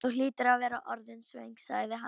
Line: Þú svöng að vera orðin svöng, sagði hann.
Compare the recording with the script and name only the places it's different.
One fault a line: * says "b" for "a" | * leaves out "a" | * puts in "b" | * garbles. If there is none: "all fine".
* says "hlýtur" for "svöng"